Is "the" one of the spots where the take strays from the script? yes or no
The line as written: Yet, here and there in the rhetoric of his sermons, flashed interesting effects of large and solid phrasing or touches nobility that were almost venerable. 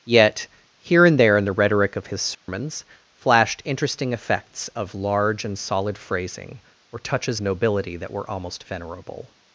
no